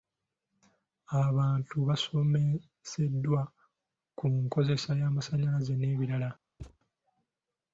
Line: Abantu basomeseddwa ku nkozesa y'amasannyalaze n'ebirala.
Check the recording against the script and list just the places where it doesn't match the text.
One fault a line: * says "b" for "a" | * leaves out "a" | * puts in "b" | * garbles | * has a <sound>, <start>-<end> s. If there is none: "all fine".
* has a thud, 6.6-6.8 s